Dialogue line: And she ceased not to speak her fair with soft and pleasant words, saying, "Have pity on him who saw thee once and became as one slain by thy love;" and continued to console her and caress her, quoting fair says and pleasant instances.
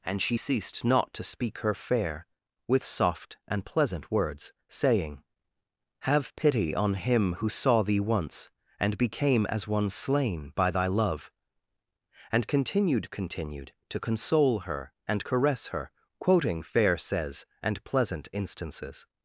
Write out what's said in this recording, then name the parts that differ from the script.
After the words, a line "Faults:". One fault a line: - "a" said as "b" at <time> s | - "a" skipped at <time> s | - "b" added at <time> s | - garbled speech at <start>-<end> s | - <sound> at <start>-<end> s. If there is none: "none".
And she ceased not to speak her fair with soft and pleasant words, saying, "Have pity on him who saw thee once and became as one slain by thy love;" and continued continued to console her and caress her, quoting fair says and pleasant instances.
Faults:
- "continued" added at 13.1 s